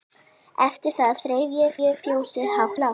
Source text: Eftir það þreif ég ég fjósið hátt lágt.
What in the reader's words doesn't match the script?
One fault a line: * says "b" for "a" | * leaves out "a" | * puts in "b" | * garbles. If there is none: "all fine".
all fine